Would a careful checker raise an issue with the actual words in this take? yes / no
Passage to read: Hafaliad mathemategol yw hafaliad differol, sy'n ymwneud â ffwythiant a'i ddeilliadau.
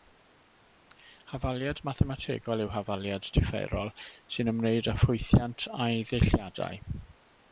no